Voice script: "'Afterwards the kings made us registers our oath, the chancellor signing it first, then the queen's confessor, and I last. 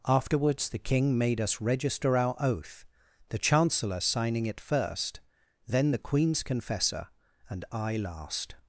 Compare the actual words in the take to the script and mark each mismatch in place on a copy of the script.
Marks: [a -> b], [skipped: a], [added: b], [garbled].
"'Afterwards the [kings -> king] made us [registers -> register] our oath, the chancellor signing it first, then the queen's confessor, and I last.